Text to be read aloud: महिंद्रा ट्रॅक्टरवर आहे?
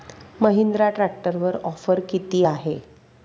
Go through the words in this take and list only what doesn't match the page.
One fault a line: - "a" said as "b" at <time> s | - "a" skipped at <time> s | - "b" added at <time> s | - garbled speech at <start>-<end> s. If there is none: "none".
- "ऑफर किती" added at 1.6 s